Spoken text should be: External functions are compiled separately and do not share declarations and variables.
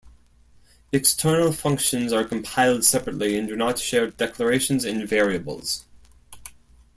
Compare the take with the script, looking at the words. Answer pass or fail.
pass